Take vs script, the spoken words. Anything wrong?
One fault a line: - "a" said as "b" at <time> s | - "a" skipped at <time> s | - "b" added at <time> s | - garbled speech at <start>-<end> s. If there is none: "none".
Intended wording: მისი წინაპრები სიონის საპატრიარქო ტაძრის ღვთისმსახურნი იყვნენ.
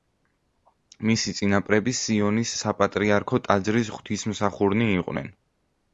none